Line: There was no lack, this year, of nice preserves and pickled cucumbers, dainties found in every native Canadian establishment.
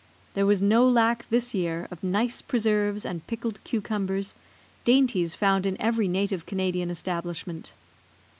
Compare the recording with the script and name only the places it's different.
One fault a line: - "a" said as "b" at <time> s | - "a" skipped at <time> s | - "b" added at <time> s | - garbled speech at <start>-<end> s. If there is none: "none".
none